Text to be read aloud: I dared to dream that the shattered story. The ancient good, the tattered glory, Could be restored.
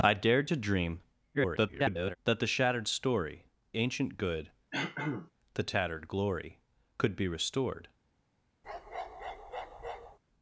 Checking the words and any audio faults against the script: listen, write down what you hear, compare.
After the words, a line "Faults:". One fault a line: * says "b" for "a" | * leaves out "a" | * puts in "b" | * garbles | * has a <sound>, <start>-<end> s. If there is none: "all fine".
I dared to dream [garbled] that the shattered story. Ancient good, the tattered glory, Could be restored.
Faults:
* garbles
* leaves out "The"
* has a throat clearing, 4.7-5.3 s
* has a bark, 8.6-10.2 s